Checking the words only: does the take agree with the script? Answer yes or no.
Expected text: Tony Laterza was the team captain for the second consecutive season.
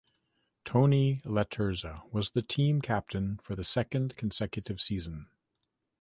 yes